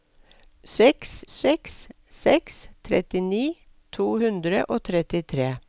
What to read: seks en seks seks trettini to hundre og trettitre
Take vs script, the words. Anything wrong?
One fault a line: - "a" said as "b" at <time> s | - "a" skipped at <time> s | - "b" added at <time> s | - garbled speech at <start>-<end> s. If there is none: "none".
- "en" skipped at 1.1 s